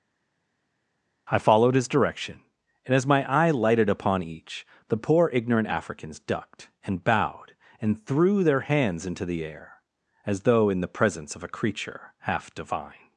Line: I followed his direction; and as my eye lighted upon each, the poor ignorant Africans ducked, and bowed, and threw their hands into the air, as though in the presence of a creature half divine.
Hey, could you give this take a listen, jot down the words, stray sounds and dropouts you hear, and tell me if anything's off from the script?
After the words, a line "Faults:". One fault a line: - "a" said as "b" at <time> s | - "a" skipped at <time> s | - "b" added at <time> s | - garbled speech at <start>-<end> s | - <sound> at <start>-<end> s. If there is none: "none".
I followed his direction; and as my eye lighted upon each, the poor ignorant Africans ducked, and bowed, and threw their hands into the air, as though in the presence of a creature half divine.
Faults:
none